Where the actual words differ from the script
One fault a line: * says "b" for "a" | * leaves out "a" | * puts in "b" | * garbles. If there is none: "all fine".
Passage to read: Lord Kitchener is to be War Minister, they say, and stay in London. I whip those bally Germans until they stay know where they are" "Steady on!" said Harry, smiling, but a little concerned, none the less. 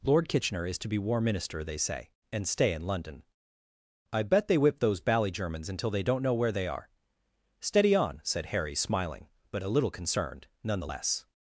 * puts in "bet they"
* says "don't" for "stay"